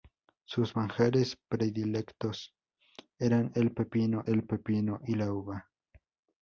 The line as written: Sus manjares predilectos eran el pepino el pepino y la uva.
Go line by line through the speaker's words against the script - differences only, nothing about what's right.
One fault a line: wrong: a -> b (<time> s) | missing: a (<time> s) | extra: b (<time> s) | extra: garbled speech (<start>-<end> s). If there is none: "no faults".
no faults